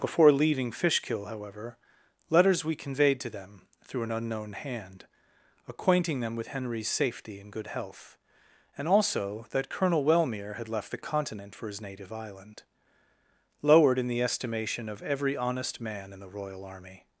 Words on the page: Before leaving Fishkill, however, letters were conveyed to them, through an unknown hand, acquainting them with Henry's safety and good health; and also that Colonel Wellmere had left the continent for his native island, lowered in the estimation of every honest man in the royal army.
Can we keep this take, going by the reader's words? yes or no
no